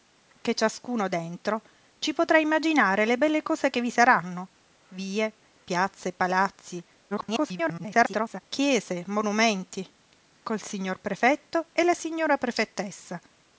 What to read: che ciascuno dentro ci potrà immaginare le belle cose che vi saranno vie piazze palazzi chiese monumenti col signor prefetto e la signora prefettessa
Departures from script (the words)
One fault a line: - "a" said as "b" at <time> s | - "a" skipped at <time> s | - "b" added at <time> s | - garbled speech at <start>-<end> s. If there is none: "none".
- garbled speech at 7.1-8.4 s